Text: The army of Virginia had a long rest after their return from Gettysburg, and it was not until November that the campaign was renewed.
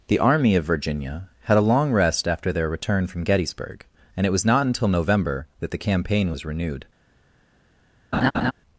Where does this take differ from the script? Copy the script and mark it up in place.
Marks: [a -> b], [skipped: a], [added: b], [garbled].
The army of Virginia had a long rest after their return from Gettysburg, and it was not until November that the campaign was renewed.